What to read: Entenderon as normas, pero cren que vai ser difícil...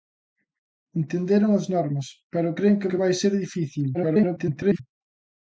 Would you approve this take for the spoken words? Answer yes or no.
no